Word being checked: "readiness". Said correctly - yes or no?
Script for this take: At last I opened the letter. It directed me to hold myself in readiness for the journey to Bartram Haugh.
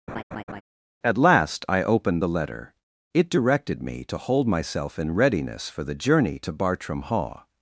yes